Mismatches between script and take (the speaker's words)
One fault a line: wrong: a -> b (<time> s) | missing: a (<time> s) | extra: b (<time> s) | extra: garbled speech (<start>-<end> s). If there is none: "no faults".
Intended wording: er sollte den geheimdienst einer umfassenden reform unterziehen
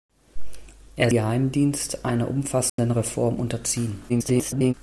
missing: sollte den (1.1 s)
extra: garbled speech (4.1-4.7 s)